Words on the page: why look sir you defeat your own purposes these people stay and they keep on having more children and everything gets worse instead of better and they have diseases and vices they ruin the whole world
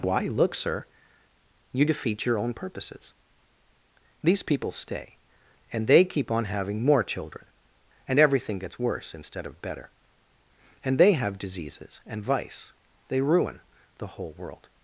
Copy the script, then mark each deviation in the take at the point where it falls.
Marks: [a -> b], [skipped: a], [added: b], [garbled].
why look sir you defeat your own purposes these people stay and they keep on having more children and everything gets worse instead of better and they have diseases and [vices -> vice] they ruin the whole world